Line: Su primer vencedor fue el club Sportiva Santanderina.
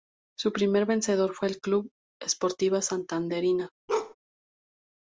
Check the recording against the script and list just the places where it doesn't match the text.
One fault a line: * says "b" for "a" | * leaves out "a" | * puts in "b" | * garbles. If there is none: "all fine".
all fine